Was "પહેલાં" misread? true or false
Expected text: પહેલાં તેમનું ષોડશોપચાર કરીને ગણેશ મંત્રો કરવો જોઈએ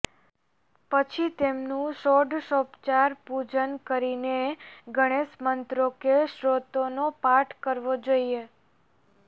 true